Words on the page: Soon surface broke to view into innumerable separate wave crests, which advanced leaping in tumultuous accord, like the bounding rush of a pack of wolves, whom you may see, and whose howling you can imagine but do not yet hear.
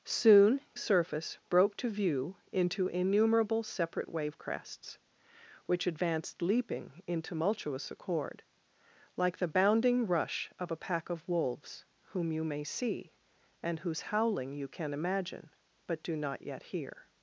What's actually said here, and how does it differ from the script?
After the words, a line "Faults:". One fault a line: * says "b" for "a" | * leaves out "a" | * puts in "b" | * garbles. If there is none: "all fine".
Soon surface broke to view into innumerable separate wave crests, which advanced leaping in tumultuous accord, like the bounding rush of a pack of wolves, whom you may see, and whose howling you can imagine but do not yet hear.
Faults:
all fine